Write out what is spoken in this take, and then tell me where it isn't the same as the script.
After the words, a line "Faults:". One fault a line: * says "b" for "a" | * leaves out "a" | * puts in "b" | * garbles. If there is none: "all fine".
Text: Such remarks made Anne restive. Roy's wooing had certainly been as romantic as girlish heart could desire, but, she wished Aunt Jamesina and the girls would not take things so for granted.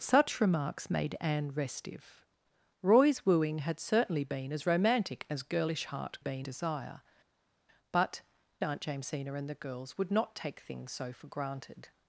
Such remarks made Anne restive. Roy's wooing had certainly been as romantic as girlish heart been desire, but, Aunt Jamesina and the girls would not take things so for granted.
Faults:
* says "been" for "could"
* leaves out "she wished"